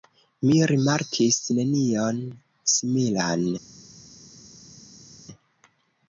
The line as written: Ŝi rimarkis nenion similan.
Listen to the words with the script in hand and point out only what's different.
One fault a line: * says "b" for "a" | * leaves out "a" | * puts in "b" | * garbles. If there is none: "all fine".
* says "Mi" for "Ŝi"